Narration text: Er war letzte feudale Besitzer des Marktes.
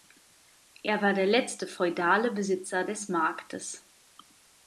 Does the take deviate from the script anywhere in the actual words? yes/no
yes